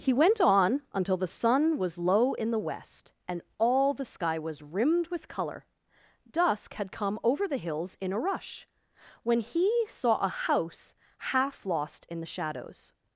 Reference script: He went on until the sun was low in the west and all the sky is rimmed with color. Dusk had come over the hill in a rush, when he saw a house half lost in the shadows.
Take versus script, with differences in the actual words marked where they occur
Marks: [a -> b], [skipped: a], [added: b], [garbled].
He went on until the sun was low in the west and all the sky [is -> was] rimmed with color. Dusk had come over the [hill -> hills] in a rush, when he saw a house half lost in the shadows.